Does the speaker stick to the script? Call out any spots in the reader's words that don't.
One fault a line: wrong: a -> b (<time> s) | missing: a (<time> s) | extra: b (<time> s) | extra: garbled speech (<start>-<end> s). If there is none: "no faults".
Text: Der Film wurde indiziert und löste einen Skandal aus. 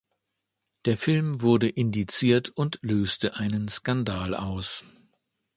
no faults